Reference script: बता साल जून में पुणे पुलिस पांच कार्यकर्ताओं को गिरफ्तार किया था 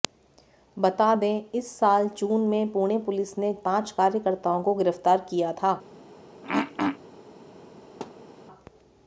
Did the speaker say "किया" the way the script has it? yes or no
yes